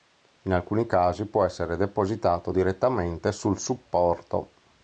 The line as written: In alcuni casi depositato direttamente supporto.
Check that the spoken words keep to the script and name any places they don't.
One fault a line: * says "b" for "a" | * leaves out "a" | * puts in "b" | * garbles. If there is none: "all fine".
* puts in "può essere"
* puts in "sul"